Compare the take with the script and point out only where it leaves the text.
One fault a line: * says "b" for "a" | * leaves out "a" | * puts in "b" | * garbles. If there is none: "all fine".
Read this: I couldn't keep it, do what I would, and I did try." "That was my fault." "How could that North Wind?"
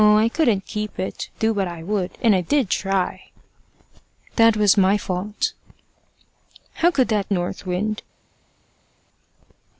all fine